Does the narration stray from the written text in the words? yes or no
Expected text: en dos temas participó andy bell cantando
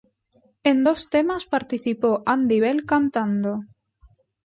no